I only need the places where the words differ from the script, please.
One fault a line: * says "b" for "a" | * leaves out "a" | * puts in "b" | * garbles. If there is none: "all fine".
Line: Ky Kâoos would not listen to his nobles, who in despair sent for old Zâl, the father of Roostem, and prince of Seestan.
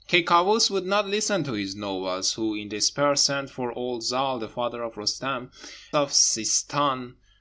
* leaves out "and prince"